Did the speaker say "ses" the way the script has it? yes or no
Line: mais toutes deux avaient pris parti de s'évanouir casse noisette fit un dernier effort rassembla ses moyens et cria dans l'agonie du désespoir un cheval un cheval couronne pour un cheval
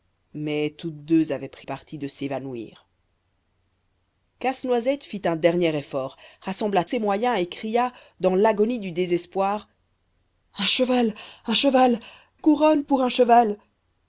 yes